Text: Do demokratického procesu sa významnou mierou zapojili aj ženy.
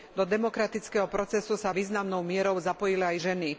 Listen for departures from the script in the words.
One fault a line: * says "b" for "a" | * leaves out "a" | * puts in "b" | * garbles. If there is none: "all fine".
all fine